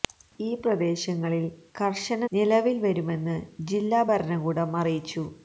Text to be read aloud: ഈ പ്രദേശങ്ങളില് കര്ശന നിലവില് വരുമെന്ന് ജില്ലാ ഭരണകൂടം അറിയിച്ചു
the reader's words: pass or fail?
pass